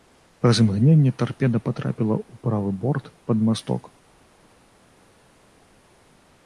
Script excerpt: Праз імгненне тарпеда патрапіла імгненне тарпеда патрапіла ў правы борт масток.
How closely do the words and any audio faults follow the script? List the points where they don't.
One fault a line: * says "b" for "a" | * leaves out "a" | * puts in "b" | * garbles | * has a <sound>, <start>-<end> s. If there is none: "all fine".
* leaves out "імгненне тарпеда патрапіла"
* puts in "пад"